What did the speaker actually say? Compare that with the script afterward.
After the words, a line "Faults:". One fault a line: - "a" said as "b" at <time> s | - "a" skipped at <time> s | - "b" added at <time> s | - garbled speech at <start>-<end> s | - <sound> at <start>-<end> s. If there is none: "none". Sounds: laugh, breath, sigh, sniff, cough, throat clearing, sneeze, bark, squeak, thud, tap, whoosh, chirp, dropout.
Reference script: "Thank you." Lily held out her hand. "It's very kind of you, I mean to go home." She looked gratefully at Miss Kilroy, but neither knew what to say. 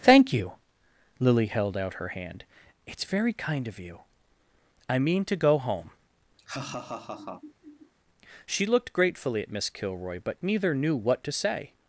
"Thank you." Lily held out her hand. "It's very kind of you, I mean to go home." She looked gratefully at Miss Kilroy, but neither knew what to say.
Faults:
- laugh at 6.4-7.9 s